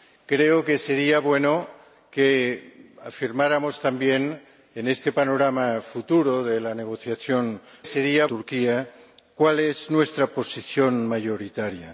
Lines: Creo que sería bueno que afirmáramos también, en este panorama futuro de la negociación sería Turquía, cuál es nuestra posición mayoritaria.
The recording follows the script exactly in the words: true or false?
true